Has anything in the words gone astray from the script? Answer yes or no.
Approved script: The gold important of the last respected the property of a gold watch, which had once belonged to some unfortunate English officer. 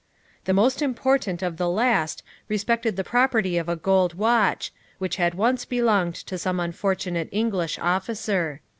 yes